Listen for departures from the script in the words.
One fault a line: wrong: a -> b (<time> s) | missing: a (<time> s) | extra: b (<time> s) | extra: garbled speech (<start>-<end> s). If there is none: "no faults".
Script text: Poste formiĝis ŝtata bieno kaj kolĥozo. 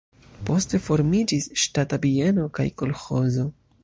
no faults